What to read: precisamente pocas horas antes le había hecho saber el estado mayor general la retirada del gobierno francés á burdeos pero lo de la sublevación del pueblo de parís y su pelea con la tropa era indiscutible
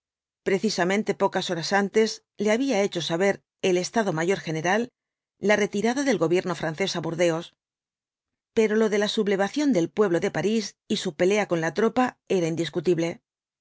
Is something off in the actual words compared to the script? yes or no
no